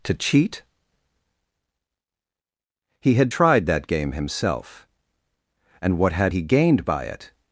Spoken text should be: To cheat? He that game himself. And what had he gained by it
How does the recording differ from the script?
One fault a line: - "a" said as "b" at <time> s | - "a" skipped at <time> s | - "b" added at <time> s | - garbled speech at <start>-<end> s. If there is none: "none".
- "had tried" added at 3.1 s